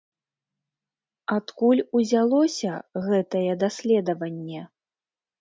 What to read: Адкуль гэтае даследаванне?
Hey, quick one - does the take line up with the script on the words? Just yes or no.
no